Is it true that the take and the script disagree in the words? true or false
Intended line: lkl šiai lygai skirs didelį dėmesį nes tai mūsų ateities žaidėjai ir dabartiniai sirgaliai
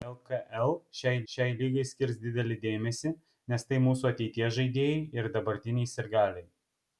true